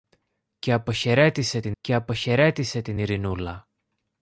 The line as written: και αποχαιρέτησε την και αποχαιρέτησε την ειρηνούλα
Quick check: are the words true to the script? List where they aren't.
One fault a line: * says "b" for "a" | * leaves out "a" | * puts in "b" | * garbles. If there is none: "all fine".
all fine